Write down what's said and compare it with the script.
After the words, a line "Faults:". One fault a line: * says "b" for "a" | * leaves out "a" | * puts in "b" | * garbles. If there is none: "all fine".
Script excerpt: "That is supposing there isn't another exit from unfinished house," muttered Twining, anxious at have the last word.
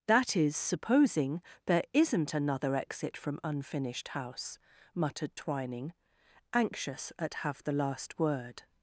"That is supposing there isn't another exit from unfinished house," muttered Twining, anxious at have the last word.
Faults:
all fine